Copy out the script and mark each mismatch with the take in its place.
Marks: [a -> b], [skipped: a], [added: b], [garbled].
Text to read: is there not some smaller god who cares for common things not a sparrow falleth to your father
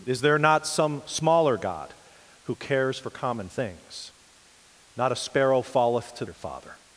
is there not some smaller god who cares for common things not a sparrow falleth to your father